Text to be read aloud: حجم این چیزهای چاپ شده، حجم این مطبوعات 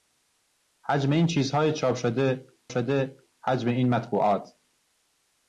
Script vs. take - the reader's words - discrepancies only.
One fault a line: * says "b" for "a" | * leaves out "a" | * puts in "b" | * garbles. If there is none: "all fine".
* puts in "شده"